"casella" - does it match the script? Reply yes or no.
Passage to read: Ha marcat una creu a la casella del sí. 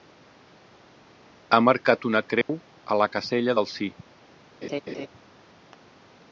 yes